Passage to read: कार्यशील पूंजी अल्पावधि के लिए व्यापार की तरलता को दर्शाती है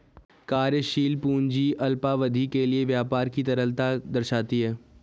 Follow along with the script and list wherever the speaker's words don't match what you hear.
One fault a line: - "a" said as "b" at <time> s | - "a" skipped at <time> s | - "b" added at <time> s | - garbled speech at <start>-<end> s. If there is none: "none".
- "को" skipped at 4.0 s